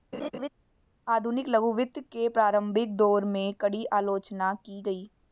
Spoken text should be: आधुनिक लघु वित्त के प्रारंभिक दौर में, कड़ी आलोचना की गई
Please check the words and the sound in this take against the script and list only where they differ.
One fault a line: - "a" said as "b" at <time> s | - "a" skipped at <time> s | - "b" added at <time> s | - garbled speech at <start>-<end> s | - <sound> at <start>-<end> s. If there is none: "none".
- laugh at 0.1-0.5 s